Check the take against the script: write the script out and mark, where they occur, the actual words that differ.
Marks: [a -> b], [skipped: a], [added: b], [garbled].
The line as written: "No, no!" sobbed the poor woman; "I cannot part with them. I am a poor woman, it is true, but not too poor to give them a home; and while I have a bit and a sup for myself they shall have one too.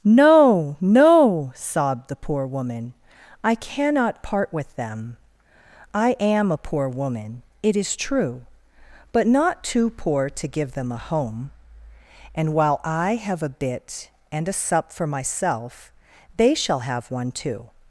"No, no!" sobbed the poor woman; "I cannot part with them. I am a poor woman, it is true, but not too poor to give them a home; and while I have a bit and a sup for myself they shall have one too.